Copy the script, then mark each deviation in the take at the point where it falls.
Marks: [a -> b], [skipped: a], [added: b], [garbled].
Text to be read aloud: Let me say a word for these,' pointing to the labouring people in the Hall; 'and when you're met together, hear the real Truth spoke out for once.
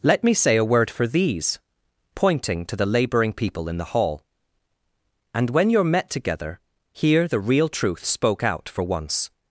Let me say a word for these,' pointing to the labouring people in the Hall; 'and when you're met together, hear the real Truth spoke out for once.